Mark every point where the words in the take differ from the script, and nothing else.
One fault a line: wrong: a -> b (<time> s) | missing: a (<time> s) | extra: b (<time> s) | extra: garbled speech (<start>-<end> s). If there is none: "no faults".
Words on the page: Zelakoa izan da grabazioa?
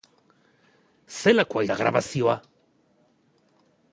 missing: izan (1.6 s)